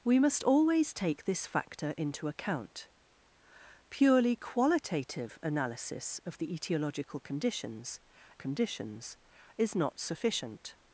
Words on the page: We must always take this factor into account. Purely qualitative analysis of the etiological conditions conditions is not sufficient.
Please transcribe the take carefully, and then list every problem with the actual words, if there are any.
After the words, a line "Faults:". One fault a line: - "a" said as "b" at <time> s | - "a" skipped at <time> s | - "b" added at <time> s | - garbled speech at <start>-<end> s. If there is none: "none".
We must always take this factor into account. Purely qualitative analysis of the etiological conditions conditions is not sufficient.
Faults:
none